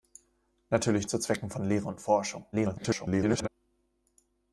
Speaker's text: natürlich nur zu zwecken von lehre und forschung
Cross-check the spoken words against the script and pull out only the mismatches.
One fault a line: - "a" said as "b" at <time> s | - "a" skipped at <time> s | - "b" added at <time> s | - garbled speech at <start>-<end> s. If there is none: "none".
- "nur" skipped at 1.1 s
- garbled speech at 2.5-3.5 s